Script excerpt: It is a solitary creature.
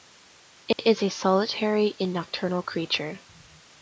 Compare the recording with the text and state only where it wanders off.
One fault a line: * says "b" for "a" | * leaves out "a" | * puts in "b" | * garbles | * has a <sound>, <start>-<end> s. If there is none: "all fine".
* has a dropout, 0.7-0.8 s
* puts in "and nocturnal"